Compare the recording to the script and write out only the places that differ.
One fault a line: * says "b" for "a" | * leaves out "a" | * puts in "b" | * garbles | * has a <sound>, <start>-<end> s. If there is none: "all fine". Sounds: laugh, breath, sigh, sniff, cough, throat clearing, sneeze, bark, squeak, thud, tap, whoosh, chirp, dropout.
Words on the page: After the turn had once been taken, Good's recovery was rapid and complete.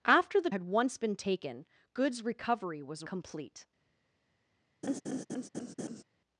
* leaves out "turn"
* leaves out "rapid and"
* has a laugh, 4.8-6.0 s